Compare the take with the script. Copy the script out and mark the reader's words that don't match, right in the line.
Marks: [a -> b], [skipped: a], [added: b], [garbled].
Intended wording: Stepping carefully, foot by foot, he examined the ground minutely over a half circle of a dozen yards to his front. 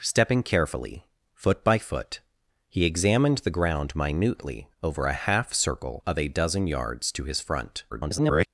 Stepping carefully, foot by foot, he examined the ground minutely over a half circle of a dozen yards to his front. [garbled]